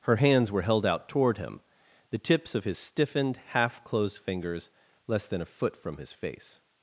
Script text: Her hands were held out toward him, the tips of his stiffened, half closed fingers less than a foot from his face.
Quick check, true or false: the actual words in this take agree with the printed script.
true